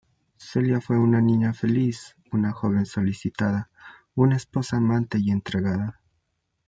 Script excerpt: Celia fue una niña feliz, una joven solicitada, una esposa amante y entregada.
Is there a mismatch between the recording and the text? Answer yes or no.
no